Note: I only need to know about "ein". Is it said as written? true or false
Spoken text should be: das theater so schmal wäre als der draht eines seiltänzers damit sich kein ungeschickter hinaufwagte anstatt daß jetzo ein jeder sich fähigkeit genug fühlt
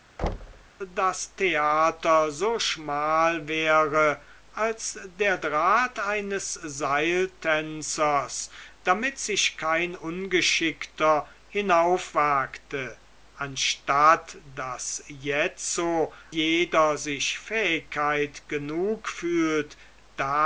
false